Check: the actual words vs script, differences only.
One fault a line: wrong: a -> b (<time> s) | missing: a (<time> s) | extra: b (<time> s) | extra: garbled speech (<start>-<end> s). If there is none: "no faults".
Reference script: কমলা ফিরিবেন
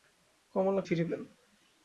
no faults